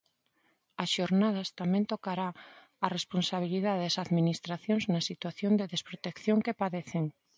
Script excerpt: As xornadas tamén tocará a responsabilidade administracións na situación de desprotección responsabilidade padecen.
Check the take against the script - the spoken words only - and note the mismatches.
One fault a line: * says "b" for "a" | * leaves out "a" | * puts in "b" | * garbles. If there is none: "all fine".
* puts in "das"
* says "que" for "responsabilidade"